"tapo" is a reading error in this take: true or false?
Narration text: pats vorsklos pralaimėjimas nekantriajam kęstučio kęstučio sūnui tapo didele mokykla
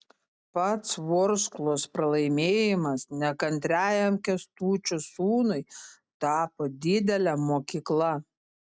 false